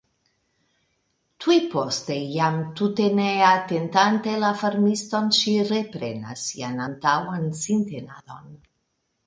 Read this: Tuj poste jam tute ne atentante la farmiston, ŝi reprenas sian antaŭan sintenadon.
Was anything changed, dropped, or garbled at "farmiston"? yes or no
no